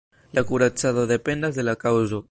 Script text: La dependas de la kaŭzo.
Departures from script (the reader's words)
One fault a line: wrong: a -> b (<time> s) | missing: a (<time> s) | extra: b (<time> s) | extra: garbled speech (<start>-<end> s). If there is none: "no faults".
extra: kuracado (0.5 s)